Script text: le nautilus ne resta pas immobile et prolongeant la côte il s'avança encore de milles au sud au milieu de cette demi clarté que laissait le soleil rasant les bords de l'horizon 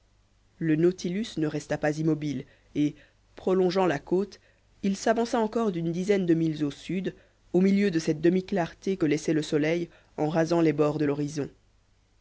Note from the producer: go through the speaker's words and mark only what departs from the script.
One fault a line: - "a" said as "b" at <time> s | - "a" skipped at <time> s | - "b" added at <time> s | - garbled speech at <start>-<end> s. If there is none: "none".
- "d'une dizaine" added at 5.7 s
- "en" added at 10.1 s